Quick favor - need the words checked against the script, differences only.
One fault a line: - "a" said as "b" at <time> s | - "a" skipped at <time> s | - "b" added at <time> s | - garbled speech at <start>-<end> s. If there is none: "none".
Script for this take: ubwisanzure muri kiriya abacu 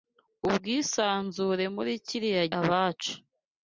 none